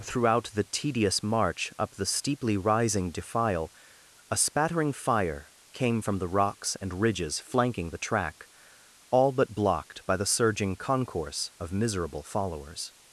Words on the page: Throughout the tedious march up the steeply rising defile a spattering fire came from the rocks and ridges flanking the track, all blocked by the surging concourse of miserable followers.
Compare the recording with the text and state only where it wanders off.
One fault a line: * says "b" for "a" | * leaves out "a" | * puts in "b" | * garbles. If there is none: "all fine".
* puts in "but"